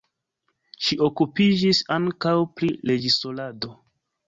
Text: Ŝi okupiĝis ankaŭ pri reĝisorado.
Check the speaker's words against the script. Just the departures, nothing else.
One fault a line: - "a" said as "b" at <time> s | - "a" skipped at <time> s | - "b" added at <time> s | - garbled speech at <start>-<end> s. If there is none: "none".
none